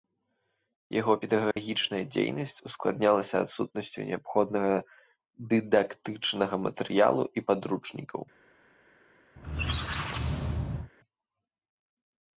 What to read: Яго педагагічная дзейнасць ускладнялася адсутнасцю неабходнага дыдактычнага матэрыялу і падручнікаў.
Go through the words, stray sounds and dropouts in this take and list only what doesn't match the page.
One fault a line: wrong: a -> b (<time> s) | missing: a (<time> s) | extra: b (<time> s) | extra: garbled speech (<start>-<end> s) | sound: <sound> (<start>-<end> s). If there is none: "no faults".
sound: dropout (1.5-1.6 s)
sound: squeak (9.4-10.9 s)